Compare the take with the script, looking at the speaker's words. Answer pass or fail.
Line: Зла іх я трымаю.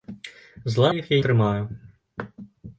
pass